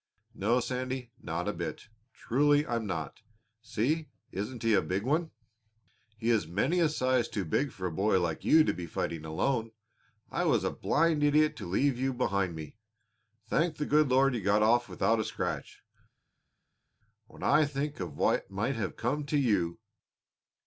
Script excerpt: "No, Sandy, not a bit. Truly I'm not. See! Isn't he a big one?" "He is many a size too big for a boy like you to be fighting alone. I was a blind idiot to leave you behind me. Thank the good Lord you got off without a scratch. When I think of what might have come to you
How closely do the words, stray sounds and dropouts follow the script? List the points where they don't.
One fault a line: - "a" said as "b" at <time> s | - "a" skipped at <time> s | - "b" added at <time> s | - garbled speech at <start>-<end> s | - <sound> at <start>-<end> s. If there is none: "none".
none